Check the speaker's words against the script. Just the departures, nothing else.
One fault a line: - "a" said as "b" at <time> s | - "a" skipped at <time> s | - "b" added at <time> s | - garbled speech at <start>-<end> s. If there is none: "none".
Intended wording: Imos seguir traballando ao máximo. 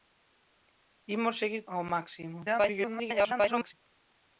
- "traballando" skipped at 1.6 s
- garbled speech at 2.4-3.7 s